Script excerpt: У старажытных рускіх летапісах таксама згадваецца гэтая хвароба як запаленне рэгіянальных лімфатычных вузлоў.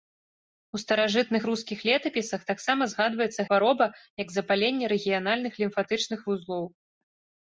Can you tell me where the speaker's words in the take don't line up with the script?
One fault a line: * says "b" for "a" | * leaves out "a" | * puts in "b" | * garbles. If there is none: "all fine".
* leaves out "гэтая"